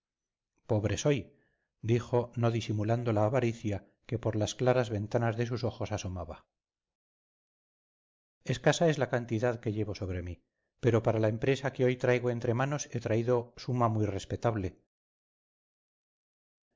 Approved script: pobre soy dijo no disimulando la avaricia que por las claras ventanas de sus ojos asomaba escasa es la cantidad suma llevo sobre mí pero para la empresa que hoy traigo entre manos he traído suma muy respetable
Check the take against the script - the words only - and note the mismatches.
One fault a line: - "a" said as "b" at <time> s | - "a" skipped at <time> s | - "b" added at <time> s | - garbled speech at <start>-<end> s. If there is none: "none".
- "suma" said as "que" at 9.6 s